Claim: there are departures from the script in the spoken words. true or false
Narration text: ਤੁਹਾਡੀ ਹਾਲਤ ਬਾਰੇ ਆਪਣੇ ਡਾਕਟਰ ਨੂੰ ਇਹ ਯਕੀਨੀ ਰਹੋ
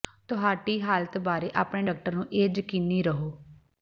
false